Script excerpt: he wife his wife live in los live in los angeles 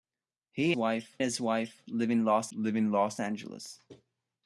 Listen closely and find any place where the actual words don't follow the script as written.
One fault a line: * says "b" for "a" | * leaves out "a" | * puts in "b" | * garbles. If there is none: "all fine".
all fine